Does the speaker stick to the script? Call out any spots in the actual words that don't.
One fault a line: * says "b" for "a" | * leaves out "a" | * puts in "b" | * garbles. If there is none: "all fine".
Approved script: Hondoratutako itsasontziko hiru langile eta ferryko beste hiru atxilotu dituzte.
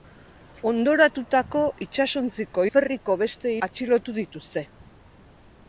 * leaves out "hiru langile eta"
* leaves out "hiru"